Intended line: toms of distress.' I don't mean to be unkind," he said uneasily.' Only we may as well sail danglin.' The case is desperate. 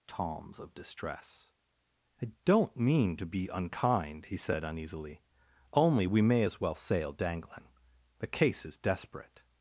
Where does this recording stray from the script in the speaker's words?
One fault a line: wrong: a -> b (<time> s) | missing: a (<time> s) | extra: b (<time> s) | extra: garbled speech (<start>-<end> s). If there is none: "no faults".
no faults